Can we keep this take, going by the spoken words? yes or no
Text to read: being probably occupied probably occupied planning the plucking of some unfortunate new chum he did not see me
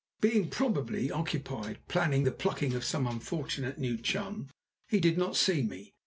no